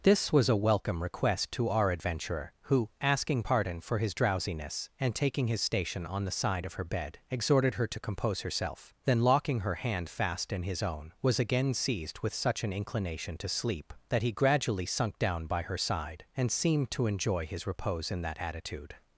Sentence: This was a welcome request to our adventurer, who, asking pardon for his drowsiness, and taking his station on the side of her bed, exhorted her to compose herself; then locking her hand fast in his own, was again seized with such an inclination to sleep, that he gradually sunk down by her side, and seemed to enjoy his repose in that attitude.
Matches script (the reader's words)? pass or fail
pass